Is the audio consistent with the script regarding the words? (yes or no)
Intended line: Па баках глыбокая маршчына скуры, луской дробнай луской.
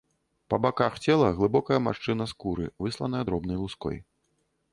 no